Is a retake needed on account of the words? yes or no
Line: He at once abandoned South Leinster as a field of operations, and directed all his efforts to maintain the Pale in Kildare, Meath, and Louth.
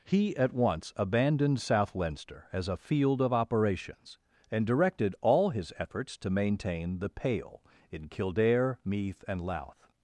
no